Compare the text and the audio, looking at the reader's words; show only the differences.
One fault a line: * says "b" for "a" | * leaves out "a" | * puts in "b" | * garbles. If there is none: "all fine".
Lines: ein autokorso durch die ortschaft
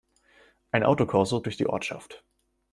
all fine